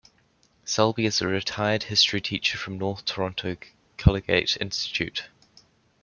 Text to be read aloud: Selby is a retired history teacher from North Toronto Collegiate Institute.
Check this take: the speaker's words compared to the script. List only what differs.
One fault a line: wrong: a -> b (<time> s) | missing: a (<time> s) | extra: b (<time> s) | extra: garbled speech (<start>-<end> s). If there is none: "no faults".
no faults